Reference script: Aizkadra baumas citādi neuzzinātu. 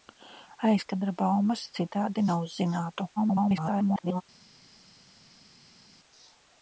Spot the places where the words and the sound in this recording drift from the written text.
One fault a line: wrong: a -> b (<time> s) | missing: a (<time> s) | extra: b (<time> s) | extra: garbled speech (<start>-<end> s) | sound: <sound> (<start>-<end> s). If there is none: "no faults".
extra: garbled speech (3.2-4.2 s)